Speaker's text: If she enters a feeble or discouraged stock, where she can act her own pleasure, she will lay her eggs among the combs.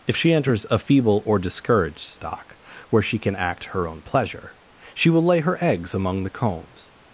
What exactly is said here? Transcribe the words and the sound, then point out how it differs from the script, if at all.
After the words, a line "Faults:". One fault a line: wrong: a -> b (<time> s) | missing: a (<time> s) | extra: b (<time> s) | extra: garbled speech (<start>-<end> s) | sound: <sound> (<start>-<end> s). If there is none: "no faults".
If she enters a feeble or discouraged stock, where she can act her own pleasure, she will lay her eggs among the combs.
Faults:
no faults